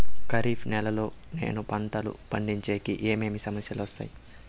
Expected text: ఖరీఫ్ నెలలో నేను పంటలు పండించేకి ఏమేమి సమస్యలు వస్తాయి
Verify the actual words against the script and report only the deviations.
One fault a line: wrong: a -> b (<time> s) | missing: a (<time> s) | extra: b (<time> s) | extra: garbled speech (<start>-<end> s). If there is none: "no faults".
no faults